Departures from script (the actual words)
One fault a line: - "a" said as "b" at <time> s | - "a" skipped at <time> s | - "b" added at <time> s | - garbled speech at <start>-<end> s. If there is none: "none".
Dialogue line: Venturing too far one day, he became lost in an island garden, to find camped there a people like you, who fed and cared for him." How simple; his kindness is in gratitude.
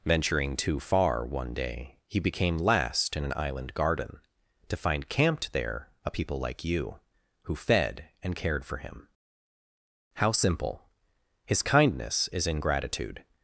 - "lost" said as "last" at 2.6 s